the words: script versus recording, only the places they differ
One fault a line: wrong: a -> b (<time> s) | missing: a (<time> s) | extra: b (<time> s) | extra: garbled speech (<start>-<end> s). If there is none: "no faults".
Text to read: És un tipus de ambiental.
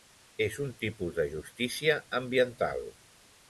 extra: justícia (1.4 s)